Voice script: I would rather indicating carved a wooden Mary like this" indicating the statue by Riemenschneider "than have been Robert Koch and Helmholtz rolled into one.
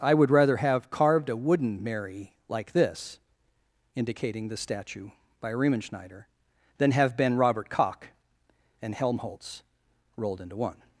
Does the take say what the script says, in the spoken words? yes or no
no